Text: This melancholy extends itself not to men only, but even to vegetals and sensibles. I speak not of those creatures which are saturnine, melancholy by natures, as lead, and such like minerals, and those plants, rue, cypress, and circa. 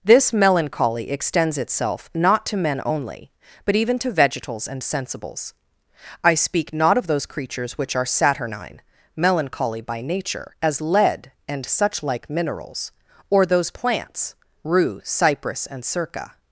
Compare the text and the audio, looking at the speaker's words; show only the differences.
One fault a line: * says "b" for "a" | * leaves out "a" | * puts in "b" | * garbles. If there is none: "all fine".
* says "nature" for "natures"
* says "or" for "and"